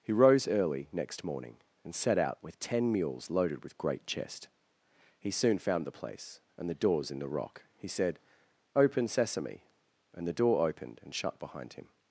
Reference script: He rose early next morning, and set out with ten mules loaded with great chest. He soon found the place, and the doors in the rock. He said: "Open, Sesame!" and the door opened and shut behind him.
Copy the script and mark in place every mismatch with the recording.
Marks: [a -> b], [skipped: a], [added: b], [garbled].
He rose early next morning, and set out with ten mules loaded with great chest. He soon found the place, and the doors in the rock. He said: "Open, Sesame!" and the door opened and shut behind him.